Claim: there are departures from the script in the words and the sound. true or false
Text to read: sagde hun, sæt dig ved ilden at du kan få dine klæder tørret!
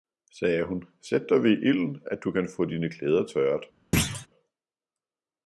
true